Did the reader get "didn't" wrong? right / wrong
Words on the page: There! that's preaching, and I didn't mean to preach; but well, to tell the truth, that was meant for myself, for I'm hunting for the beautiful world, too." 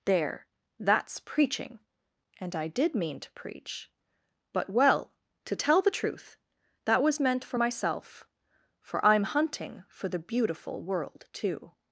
wrong